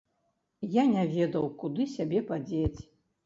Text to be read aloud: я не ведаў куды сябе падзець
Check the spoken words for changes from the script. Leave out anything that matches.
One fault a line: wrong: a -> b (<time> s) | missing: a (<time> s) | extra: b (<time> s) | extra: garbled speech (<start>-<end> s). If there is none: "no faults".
no faults